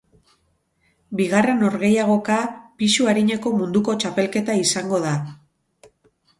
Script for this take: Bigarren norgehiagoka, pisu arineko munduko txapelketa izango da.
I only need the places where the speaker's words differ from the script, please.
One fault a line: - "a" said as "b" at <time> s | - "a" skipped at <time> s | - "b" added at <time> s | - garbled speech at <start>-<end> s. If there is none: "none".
none